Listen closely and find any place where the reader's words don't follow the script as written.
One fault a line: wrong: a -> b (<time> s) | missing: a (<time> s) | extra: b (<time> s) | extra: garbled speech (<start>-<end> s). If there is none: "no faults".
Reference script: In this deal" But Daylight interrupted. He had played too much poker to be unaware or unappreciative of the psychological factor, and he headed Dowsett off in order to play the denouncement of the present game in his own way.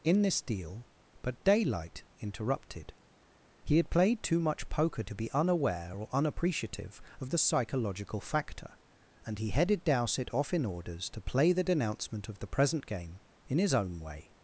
wrong: order -> orders (10.6 s)